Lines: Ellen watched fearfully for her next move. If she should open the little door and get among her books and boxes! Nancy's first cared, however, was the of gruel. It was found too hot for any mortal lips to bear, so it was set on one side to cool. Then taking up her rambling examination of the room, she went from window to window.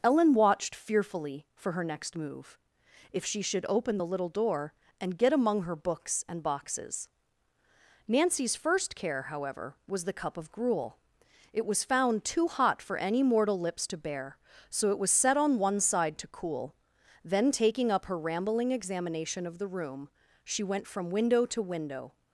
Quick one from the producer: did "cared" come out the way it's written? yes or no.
no